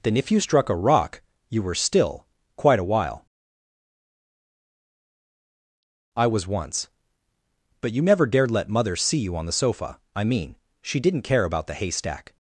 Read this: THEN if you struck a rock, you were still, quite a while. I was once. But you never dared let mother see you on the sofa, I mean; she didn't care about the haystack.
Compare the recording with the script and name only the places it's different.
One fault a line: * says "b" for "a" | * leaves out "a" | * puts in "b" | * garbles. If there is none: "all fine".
all fine